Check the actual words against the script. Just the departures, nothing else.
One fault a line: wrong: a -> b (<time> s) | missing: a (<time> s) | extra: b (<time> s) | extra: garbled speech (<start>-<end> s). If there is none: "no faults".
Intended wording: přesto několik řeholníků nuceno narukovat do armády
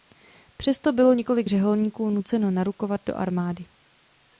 extra: bylo (0.9 s)